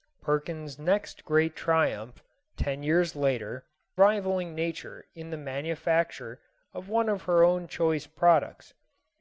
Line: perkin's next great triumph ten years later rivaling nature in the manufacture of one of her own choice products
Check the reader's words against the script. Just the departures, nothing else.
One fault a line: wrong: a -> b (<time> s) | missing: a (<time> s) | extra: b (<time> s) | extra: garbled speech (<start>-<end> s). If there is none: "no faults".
no faults